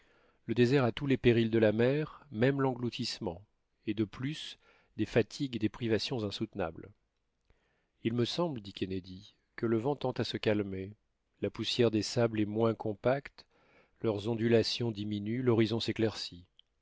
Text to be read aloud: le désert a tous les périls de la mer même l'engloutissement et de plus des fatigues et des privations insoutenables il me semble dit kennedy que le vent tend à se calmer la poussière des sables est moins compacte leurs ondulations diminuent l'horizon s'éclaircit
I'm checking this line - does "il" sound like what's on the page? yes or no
yes